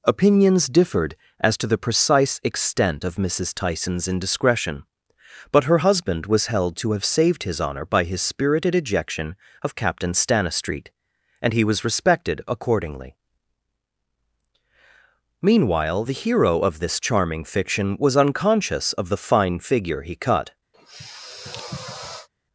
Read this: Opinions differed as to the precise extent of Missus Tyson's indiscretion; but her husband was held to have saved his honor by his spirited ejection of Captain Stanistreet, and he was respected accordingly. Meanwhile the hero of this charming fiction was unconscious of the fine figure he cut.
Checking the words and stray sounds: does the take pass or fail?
fail